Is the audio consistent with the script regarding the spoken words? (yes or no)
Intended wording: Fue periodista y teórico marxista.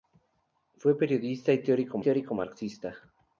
no